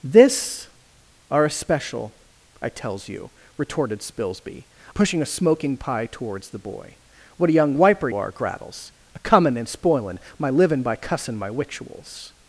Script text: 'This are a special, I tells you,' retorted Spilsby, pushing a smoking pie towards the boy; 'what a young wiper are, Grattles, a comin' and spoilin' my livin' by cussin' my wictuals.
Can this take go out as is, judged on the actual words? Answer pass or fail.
pass